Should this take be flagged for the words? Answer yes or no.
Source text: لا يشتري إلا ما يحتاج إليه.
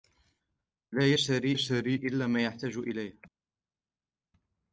yes